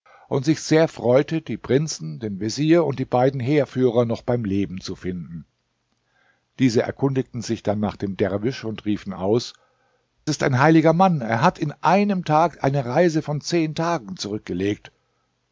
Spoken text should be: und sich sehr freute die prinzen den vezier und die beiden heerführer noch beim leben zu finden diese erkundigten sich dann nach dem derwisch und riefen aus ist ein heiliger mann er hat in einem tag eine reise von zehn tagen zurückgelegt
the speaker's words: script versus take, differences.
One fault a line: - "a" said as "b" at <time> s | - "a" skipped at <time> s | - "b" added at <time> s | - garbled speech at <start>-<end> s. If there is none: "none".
none